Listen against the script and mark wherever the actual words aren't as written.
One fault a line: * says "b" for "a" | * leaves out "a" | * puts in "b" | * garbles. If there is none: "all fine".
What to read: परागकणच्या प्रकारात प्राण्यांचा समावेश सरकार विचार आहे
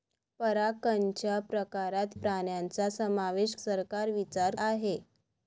all fine